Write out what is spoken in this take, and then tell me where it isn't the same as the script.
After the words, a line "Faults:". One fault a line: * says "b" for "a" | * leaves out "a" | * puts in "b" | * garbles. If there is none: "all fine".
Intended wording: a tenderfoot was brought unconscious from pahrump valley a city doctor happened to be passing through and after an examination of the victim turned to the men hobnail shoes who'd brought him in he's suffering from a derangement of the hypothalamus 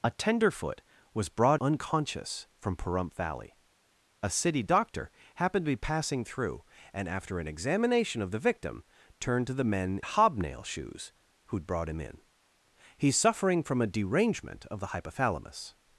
a tenderfoot was brought unconscious from pahrump valley a city doctor happened to be passing through and after an examination of the victim turned to the men hobnail shoes who'd brought him in he's suffering from a derangement of the hypothalamus
Faults:
all fine